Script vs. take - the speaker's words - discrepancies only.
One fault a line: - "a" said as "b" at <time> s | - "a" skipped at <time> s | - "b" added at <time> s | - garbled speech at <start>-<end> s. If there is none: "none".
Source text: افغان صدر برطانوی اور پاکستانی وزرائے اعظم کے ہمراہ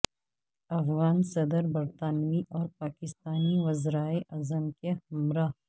none